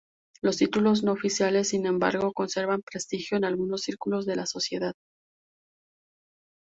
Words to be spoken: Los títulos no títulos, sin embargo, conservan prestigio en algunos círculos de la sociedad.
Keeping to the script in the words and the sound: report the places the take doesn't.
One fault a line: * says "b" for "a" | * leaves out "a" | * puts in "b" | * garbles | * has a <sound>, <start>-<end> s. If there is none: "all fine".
* says "oficiales" for "títulos"